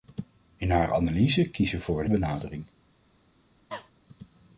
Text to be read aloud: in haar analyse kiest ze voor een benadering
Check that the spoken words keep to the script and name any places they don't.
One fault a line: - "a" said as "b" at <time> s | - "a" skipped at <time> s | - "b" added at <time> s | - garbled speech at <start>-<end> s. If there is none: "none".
none